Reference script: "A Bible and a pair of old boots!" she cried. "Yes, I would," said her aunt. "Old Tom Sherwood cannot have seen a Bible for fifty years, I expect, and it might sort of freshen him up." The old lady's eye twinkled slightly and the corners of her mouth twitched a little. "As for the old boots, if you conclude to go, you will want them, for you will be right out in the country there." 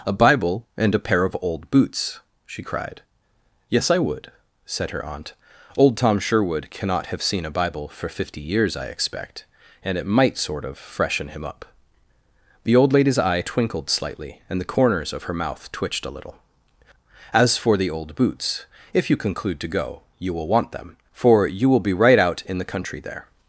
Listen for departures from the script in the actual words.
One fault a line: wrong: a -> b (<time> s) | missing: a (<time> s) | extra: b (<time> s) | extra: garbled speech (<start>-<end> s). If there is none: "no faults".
no faults